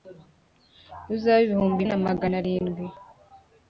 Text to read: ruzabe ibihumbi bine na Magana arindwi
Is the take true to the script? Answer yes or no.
no